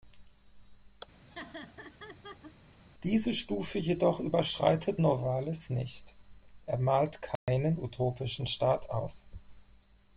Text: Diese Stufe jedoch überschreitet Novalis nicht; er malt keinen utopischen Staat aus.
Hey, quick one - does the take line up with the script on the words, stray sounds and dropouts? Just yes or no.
no